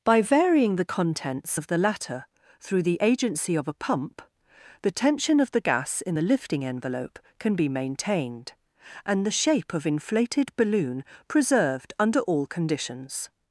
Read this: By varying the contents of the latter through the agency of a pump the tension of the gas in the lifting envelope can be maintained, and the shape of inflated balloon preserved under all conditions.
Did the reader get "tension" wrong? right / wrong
right